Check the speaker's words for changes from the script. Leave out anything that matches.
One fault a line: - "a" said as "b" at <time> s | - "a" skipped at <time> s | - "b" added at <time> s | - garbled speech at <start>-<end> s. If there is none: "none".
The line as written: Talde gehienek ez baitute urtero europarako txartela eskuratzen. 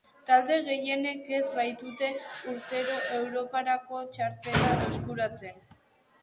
none